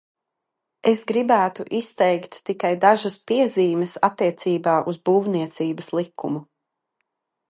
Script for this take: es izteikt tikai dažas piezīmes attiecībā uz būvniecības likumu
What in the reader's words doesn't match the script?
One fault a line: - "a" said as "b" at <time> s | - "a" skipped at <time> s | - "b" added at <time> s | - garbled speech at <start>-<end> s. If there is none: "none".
- "gribētu" added at 1.1 s